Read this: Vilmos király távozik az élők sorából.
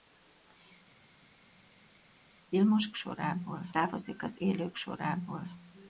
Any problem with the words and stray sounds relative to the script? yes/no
yes